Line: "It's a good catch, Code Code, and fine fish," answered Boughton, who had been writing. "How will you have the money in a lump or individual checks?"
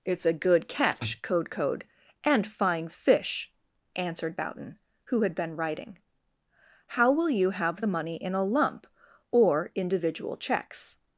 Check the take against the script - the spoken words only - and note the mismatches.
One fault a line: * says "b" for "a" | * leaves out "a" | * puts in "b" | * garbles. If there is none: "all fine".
all fine